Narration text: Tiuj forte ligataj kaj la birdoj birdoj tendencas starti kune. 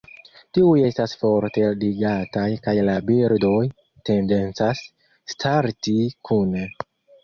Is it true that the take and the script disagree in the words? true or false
true